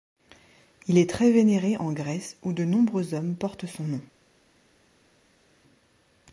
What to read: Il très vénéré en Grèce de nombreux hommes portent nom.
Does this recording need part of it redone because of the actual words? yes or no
yes